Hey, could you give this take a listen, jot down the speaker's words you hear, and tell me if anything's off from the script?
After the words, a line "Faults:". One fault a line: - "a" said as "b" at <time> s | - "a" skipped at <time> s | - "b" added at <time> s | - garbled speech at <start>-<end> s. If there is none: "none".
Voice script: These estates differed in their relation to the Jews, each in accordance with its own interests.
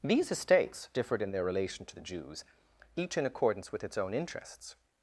These estates differed in their relation to the Jews, each in accordance with its own interests.
Faults:
none